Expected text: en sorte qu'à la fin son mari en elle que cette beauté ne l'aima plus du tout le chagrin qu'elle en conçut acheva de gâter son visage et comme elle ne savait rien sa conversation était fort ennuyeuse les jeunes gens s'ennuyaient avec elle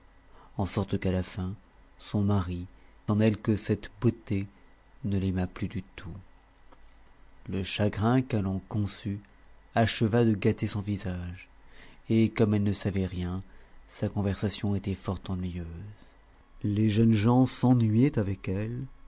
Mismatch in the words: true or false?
false